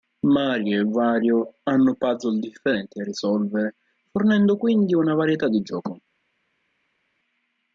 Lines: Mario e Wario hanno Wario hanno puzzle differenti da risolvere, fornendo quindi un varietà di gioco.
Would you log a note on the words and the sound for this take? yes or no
yes